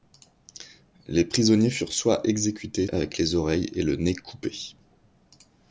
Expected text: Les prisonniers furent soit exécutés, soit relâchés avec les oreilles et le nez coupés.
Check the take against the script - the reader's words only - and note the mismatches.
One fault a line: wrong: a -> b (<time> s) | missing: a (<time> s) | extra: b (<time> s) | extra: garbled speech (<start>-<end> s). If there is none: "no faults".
missing: soit relâchés (2.9 s)